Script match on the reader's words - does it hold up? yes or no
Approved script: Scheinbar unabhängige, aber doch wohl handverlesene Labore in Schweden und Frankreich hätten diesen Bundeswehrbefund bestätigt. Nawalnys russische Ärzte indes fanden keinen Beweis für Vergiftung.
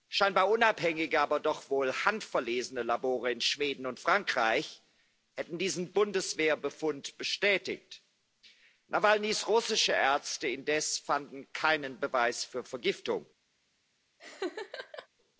yes